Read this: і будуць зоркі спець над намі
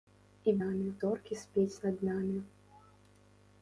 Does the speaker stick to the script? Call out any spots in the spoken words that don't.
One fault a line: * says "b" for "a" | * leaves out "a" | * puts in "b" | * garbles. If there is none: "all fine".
* says "намі" for "будуць"